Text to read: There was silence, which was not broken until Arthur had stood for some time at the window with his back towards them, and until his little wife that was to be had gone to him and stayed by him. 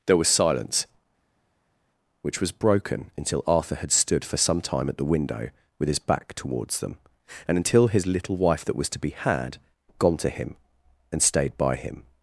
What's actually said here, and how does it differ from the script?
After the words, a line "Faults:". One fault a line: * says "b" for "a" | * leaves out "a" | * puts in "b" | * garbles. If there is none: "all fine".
There was silence, which was broken until Arthur had stood for some time at the window with his back towards them, and until his little wife that was to be had gone to him and stayed by him.
Faults:
* leaves out "not"